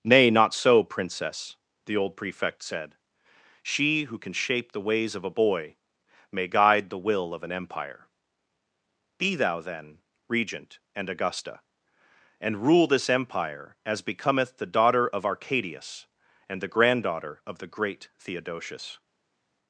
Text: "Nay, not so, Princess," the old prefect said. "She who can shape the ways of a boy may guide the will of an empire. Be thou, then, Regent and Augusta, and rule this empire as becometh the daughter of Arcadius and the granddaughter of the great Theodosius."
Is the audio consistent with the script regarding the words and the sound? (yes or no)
yes